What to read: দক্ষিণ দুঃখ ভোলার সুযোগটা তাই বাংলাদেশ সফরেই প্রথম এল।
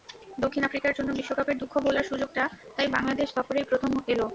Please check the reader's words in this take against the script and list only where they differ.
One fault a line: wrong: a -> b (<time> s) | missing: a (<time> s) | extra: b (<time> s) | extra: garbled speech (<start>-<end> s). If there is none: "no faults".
extra: আফ্রিকার জন্য বিশ্বকাপের (0.6 s)